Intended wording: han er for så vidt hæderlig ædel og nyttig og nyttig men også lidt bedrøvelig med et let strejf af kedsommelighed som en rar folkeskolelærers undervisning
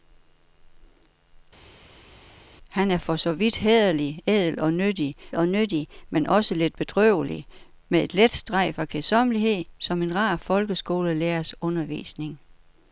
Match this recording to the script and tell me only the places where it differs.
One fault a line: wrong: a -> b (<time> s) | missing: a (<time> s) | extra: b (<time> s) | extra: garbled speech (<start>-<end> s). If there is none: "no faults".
no faults